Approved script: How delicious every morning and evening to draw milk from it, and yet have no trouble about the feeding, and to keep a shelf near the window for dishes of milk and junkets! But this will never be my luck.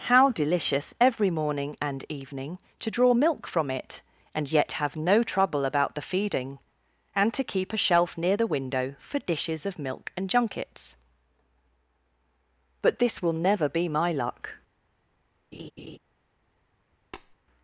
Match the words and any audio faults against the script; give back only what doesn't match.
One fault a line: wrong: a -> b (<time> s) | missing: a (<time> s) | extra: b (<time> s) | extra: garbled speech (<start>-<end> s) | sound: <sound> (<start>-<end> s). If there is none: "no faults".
sound: laugh (15.5-16.0 s)
sound: tap (17.1-17.4 s)